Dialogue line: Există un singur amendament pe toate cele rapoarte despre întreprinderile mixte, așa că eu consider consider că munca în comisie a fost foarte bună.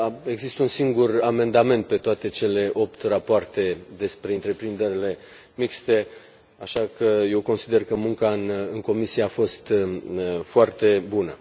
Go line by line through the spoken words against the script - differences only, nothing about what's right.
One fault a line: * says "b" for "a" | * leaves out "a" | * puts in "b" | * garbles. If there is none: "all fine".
* puts in "opt"
* leaves out "consider"